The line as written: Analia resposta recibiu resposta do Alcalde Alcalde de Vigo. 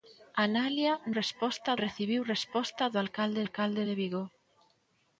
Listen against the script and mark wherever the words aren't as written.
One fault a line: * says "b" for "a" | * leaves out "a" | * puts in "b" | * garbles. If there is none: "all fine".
all fine